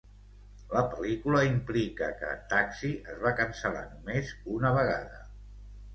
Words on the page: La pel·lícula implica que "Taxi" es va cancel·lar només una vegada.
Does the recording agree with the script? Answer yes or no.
yes